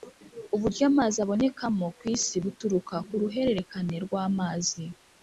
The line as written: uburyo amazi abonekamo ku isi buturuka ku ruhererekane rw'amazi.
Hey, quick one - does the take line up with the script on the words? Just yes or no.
yes